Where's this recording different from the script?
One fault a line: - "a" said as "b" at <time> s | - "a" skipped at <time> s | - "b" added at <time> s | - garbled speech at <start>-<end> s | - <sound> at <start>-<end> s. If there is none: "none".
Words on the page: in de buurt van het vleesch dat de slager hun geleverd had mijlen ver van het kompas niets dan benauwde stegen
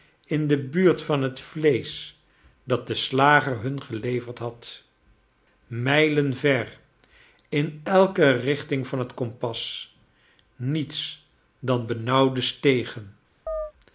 - "in elke richting" added at 7.5 s
- chirp at 13.5-13.7 s